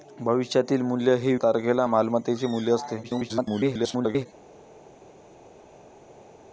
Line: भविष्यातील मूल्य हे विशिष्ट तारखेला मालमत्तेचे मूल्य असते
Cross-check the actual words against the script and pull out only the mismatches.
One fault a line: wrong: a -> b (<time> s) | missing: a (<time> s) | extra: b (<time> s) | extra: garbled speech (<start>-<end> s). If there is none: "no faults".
missing: विशिष्ट (1.4 s)
extra: garbled speech (3.0-4.3 s)